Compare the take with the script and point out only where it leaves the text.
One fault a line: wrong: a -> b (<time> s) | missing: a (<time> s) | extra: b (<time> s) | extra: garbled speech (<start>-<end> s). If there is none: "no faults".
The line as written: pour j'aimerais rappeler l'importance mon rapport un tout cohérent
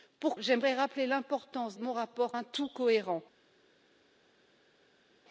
no faults